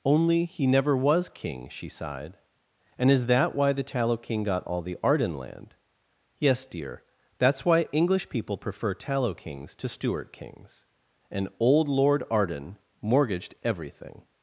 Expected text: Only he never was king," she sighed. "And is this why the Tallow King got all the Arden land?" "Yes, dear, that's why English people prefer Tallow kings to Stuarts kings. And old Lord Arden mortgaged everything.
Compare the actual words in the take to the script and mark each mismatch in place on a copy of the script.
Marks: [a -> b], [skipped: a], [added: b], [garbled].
Only he never was king," she sighed. "And is [this -> that] why the Tallow King got all the Arden land?" "Yes, dear, that's why English people prefer Tallow kings to [Stuarts -> Stuart] kings. And old Lord Arden mortgaged everything.